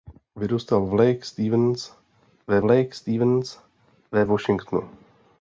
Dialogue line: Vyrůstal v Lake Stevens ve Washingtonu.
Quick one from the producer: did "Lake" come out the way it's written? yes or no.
yes